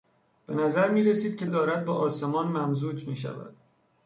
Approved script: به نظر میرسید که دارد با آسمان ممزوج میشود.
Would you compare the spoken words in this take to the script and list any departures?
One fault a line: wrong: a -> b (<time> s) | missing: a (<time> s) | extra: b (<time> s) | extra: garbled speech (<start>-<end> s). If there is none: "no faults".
no faults